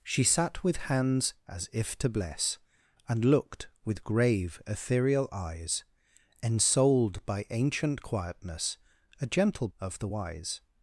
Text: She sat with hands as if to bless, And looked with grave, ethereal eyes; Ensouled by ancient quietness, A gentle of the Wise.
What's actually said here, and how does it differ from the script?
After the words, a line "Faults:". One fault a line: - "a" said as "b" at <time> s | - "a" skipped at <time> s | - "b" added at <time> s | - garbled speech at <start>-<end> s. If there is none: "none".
She sat with hands as if to bless, And looked with grave, ethereal eyes; Ensouled by ancient quietness, A gentle of the Wise.
Faults:
none